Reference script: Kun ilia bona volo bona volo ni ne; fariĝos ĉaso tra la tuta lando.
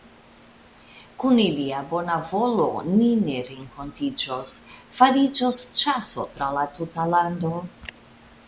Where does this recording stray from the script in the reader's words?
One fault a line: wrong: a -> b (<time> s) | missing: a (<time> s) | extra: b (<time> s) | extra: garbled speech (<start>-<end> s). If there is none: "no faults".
missing: bona volo (2.6 s)
extra: renkontiĝos (3.5 s)